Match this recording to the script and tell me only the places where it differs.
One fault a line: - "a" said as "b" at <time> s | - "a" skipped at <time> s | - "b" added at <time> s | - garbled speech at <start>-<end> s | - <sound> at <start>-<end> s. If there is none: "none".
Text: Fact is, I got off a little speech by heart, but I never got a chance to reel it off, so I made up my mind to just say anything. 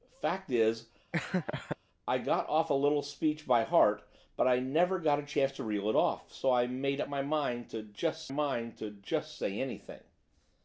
- laugh at 1.1-1.8 s
- "mind to just" added at 8.3 s